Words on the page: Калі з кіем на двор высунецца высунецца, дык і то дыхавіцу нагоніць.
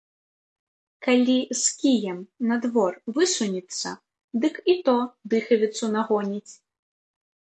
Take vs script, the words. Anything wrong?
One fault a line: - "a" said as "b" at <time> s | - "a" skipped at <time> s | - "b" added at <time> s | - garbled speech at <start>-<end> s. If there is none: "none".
- "высунецца" skipped at 3.9 s